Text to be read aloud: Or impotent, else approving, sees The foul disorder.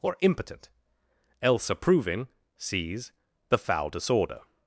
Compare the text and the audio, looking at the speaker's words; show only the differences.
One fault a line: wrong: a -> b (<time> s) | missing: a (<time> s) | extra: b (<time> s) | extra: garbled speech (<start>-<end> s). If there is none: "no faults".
no faults